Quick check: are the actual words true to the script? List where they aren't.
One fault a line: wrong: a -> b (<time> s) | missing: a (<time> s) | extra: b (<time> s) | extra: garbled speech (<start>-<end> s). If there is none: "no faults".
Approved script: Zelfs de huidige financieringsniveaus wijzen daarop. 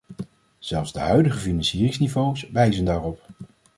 no faults